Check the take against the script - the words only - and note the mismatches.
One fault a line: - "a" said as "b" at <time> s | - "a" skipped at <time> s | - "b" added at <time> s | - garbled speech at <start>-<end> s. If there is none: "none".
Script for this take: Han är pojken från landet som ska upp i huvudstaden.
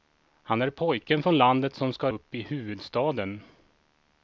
none